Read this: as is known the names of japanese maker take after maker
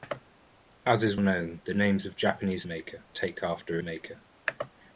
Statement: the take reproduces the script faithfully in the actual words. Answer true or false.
true